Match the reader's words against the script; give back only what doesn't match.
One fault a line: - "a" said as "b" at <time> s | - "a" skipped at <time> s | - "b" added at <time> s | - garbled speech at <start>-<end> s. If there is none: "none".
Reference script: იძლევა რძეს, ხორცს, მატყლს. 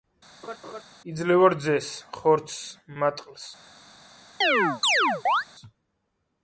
none